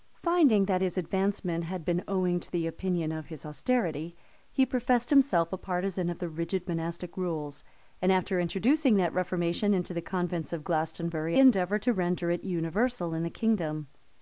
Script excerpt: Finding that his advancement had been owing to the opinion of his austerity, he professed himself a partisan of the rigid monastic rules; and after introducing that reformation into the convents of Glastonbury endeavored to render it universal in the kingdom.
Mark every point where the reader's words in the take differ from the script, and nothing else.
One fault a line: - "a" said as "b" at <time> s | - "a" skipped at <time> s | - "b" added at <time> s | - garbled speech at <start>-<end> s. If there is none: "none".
none